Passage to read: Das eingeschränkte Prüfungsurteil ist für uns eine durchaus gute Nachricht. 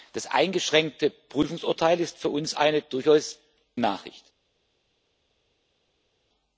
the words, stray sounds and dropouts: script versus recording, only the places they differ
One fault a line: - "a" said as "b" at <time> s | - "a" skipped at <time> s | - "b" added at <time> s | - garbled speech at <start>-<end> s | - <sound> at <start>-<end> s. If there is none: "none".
- "gute" skipped at 3.4 s